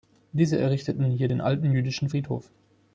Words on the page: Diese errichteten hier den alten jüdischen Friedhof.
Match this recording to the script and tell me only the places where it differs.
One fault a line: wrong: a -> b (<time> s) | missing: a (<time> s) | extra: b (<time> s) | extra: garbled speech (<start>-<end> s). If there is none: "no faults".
no faults